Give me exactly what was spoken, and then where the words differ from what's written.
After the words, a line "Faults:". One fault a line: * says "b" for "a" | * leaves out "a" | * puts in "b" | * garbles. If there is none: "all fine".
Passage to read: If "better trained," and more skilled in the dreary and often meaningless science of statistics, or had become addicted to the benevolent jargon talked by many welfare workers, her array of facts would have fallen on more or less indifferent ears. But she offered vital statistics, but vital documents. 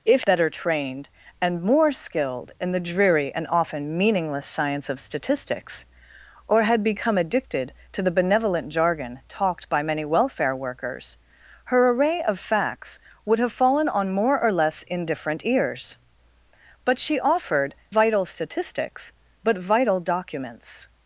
If "better trained," and more skilled in the dreary and often meaningless science of statistics, or had become addicted to the benevolent jargon talked by many welfare workers, her array of facts would have fallen on more or less indifferent ears. But she offered vital statistics, but vital documents.
Faults:
all fine